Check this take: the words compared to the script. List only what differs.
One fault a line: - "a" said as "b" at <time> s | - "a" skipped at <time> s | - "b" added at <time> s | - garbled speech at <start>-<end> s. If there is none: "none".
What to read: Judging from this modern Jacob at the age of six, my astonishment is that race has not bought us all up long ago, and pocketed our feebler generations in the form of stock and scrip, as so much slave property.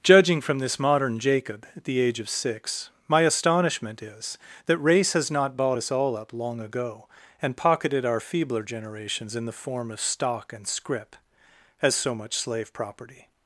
none